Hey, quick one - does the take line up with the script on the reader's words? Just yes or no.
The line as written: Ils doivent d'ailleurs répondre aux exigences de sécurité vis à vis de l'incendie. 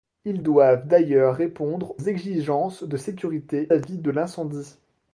no